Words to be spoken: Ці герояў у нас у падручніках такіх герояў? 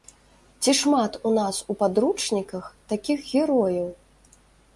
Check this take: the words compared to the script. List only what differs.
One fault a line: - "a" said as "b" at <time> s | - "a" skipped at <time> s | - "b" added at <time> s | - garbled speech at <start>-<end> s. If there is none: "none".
- "герояў" said as "шмат" at 0.8 s